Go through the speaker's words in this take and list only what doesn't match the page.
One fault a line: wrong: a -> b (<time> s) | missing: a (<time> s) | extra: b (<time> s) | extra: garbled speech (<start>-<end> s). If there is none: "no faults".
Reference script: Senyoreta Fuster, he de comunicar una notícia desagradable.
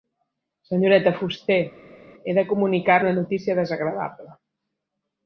no faults